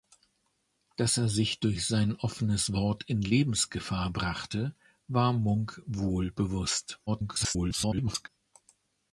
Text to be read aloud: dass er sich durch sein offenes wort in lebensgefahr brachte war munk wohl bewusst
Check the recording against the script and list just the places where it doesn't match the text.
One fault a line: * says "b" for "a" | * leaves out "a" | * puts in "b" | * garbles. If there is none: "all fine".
* garbles